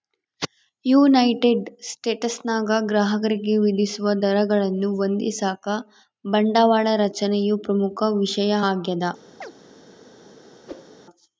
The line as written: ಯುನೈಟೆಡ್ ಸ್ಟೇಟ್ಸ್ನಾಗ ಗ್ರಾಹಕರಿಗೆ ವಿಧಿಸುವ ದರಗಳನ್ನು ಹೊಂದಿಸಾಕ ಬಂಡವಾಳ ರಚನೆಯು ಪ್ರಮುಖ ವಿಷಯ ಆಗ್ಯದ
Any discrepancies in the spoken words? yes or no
no